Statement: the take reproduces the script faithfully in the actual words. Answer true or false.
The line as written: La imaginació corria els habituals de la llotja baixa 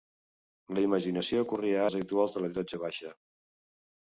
true